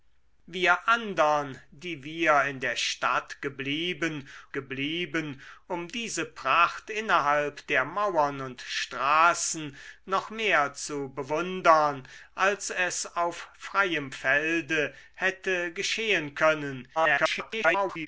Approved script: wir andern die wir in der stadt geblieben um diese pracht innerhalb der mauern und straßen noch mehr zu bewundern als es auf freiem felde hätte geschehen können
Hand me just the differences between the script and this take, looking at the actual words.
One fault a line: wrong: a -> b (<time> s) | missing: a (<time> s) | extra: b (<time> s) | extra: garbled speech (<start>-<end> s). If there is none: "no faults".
extra: geblieben (4.5 s)
extra: garbled speech (16.9-18.1 s)